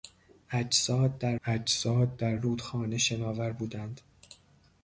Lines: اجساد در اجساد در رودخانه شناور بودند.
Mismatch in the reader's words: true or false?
false